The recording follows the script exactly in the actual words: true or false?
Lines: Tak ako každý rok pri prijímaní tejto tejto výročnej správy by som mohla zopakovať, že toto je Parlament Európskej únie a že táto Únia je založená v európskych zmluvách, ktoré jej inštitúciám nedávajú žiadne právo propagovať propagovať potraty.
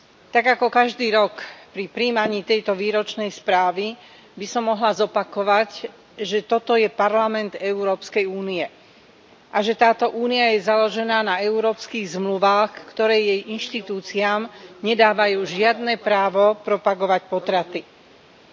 false